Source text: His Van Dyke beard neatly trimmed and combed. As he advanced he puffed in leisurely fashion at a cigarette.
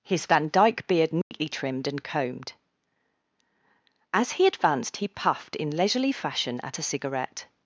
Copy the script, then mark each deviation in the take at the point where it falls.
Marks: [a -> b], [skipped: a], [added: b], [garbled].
His Van Dyke beard neatly trimmed and combed. As he advanced he puffed in leisurely fashion at a cigarette.